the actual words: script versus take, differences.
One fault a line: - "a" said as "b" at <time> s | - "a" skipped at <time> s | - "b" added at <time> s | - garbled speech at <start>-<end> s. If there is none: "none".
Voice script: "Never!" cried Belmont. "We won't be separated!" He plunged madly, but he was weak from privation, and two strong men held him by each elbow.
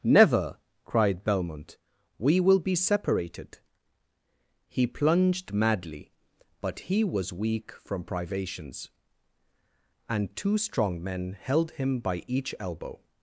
- "won't" said as "will" at 2.4 s
- "privation" said as "privations" at 8.0 s